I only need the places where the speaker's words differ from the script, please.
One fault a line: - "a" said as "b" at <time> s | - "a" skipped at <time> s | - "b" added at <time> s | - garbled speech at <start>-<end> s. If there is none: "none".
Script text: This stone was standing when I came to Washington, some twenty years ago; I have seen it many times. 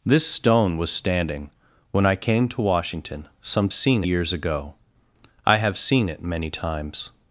- "twenty" said as "seen" at 3.7 s